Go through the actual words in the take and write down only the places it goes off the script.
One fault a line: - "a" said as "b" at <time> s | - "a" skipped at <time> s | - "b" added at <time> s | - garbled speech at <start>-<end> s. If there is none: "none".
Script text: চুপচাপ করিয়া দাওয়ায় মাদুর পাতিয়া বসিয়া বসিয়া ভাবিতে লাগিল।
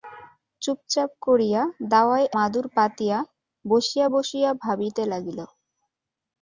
none